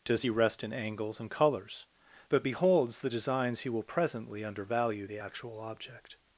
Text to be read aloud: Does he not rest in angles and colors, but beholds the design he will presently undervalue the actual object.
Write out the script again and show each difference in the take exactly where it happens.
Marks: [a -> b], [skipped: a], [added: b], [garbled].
Does he [skipped: not] rest in angles and colors, but beholds the [design -> designs] he will presently undervalue the actual object.